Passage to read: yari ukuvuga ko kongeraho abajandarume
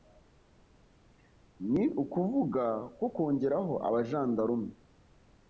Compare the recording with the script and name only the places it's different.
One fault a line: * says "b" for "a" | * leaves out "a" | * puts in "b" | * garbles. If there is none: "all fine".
* says "ni" for "yari"